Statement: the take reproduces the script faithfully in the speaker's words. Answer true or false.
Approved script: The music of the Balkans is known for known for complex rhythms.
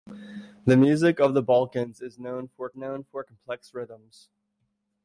true